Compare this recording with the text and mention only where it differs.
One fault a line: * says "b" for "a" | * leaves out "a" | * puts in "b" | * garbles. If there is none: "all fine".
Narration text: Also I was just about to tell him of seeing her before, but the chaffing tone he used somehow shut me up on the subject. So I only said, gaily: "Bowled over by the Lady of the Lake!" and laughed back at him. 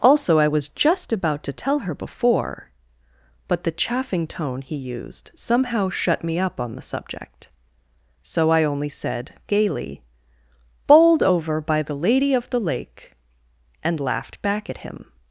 * leaves out "him of seeing"